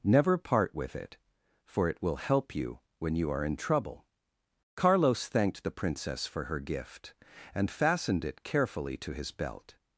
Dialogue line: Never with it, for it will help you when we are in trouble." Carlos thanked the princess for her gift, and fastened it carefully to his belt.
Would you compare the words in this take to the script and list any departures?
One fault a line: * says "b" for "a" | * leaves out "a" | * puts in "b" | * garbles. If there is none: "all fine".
* puts in "part"
* says "you" for "we"